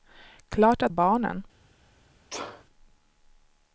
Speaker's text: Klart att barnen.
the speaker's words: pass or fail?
pass